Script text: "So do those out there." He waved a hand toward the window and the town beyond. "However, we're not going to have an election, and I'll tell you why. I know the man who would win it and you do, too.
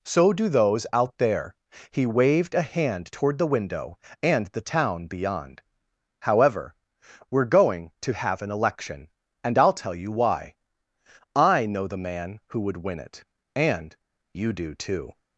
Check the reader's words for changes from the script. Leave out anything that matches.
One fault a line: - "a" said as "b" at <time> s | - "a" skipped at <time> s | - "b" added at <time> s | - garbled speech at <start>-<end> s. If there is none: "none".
- "not" skipped at 7.4 s